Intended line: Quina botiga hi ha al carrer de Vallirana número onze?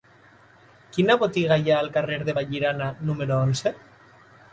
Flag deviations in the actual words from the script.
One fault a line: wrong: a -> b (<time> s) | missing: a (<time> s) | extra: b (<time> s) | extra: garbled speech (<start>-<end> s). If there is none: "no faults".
no faults